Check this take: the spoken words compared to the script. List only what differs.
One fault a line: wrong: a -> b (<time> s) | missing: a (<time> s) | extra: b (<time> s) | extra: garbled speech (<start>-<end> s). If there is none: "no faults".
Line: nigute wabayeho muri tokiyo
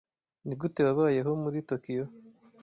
no faults